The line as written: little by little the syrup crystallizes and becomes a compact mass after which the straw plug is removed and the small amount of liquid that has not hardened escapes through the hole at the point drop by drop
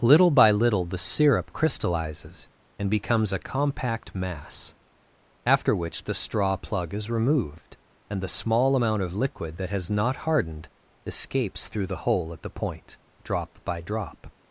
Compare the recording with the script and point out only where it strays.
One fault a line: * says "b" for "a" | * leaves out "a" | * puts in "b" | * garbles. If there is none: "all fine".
all fine